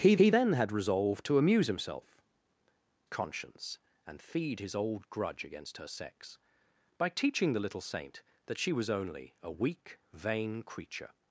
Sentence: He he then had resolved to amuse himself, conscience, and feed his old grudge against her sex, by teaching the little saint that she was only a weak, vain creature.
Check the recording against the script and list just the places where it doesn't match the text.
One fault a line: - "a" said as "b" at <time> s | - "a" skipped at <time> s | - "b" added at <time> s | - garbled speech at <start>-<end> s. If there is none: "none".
none